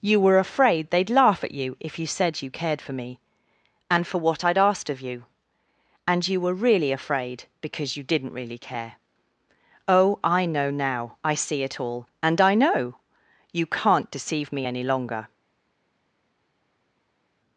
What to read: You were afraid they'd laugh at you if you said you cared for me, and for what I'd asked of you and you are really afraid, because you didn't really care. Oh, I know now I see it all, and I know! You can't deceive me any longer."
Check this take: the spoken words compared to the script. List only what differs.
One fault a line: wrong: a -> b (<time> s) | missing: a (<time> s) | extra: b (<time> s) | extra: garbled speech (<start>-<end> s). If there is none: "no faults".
wrong: are -> were (6.4 s)